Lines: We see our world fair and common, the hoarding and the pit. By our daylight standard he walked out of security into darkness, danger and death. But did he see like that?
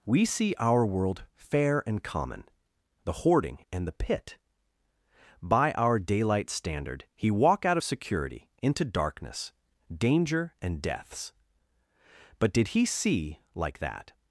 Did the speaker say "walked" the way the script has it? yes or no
no